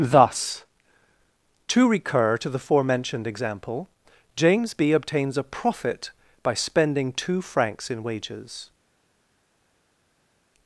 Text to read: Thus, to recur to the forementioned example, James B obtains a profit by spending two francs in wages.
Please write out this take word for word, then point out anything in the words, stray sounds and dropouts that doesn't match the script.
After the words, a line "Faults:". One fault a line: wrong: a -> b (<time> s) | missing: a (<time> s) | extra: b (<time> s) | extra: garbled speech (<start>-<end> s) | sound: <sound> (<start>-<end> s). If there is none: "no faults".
Thus, to recur to the forementioned example, James B obtains a profit by spending two francs in wages.
Faults:
no faults